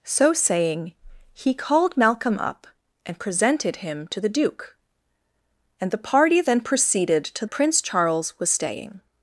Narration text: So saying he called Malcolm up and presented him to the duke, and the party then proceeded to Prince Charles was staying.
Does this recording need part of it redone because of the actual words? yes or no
no